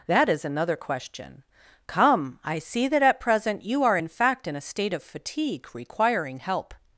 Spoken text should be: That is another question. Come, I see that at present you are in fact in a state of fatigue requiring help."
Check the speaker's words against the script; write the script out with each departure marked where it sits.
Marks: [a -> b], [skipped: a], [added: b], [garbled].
That is another question. Come, I see that at present you are in fact in a state of fatigue requiring help."